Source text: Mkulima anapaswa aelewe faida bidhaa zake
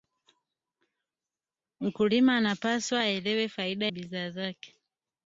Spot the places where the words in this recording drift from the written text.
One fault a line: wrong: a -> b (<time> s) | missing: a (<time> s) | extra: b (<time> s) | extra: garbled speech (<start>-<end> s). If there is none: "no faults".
no faults